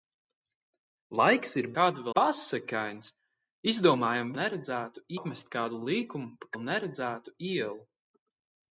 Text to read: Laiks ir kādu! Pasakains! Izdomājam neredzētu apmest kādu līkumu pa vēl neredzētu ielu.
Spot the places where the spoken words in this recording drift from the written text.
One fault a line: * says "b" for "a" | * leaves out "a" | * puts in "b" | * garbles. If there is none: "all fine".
all fine